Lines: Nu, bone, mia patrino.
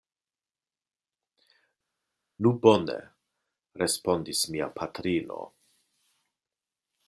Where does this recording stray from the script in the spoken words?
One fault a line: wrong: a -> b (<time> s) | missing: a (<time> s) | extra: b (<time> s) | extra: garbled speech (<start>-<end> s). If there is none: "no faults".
extra: respondis (3.8 s)